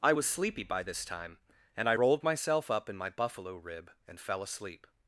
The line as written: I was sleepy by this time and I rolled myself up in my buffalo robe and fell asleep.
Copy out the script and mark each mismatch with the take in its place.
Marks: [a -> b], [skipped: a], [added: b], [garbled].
I was sleepy by this time and I rolled myself up in my buffalo [robe -> rib] and fell asleep.